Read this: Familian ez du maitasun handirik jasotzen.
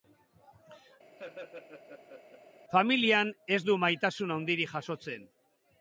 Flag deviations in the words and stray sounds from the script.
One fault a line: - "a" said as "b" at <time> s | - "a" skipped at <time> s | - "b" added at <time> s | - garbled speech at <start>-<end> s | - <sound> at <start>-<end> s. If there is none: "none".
- laugh at 1.2-2.4 s